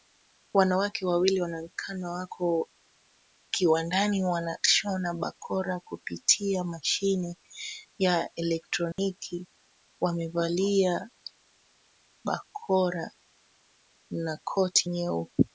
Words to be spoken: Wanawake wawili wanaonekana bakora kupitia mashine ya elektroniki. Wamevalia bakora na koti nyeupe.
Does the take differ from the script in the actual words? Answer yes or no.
yes